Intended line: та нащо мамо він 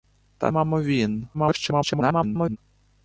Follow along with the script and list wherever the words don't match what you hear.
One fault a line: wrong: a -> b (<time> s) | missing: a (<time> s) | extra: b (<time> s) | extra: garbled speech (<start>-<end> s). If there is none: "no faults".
missing: нащо (0.5 s)
extra: garbled speech (1.3-2.6 s)